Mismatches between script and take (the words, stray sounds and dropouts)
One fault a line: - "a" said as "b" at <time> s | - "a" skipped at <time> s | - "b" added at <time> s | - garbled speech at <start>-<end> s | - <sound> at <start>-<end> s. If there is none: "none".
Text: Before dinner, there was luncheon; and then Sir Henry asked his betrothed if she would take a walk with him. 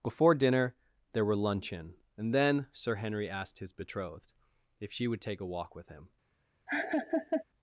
- "was" said as "were" at 1.2 s
- laugh at 6.7-7.4 s